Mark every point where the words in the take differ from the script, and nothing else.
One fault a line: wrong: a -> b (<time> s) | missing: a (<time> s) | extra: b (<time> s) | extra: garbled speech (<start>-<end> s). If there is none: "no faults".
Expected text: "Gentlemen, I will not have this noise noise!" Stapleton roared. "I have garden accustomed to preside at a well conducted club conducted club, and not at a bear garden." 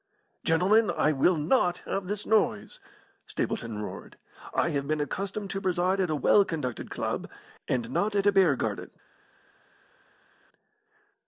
missing: noise (2.8 s)
wrong: garden -> been (4.9 s)
missing: conducted club (7.3 s)